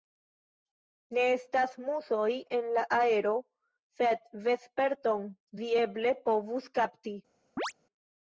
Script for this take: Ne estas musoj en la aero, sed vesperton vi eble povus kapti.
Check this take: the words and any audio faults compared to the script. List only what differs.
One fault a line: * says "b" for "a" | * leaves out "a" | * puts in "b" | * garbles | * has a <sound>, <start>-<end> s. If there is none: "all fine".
* has a chirp, 7.6-7.7 s